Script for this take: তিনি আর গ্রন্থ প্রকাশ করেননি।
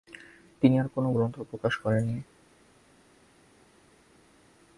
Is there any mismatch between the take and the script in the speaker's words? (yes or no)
yes